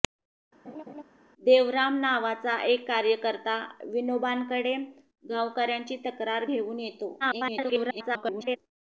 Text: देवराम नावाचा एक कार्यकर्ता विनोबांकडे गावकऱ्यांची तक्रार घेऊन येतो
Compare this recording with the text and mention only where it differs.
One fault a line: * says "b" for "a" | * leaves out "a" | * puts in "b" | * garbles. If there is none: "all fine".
* garbles